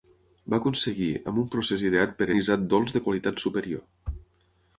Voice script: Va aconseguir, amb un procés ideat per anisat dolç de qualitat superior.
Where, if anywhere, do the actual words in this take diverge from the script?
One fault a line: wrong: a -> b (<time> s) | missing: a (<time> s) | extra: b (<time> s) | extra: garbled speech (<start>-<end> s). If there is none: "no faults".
no faults